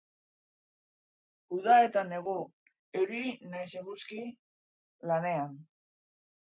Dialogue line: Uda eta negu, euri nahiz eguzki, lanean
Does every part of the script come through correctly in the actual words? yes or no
yes